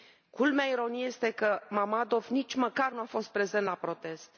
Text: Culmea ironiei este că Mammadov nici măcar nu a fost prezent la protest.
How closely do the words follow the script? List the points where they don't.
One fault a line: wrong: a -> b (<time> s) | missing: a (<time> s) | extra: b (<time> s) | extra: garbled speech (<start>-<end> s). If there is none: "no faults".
no faults